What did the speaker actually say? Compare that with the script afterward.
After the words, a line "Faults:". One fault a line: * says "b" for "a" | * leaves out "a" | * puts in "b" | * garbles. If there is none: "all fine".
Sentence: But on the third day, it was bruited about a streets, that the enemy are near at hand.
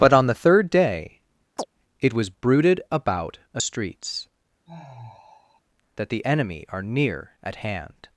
But on the third day, it was bruited about a streets, that the enemy are near at hand.
Faults:
all fine